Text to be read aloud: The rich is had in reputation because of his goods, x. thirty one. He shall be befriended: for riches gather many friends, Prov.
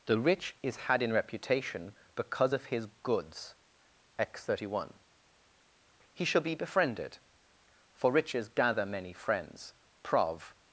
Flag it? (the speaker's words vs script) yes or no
no